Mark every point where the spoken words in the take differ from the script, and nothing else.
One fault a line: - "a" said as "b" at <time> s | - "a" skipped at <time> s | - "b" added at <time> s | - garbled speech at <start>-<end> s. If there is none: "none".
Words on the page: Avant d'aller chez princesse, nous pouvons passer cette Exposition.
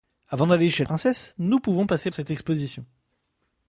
none